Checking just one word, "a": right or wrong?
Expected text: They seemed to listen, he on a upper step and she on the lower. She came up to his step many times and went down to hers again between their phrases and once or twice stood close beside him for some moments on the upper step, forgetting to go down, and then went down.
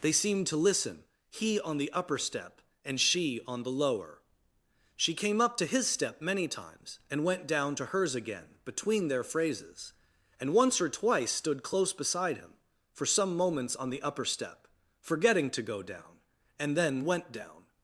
wrong